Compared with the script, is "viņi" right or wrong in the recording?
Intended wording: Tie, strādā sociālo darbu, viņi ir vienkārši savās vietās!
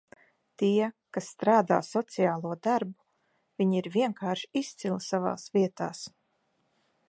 right